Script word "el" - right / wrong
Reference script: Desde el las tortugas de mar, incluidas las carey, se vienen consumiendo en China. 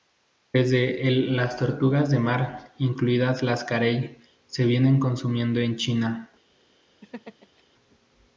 right